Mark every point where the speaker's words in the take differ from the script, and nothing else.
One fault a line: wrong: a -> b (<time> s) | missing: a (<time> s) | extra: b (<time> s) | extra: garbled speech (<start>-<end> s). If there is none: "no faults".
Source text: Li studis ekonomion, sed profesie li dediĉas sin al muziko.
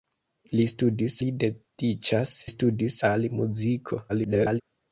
missing: ekonomion sed profesie (1.2 s)
wrong: sin -> studis (2.5 s)
extra: garbled speech (4.1-4.6 s)